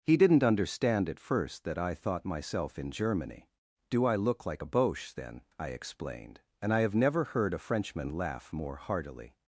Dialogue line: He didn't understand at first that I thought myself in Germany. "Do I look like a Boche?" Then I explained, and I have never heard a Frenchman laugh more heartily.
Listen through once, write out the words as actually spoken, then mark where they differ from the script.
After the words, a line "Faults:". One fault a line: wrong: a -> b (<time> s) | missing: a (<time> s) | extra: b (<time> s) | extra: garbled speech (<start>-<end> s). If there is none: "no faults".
He didn't understand at first that I thought myself in Germany. "Do I look like a Boche?" Then I explained, and I have never heard a Frenchman laugh more heartily.
Faults:
no faults